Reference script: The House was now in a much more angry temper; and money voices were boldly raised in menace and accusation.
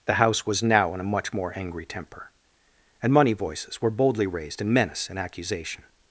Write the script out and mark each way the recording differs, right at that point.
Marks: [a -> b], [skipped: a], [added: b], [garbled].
The House was now in a much more angry temper; and money voices were boldly raised in menace and accusation.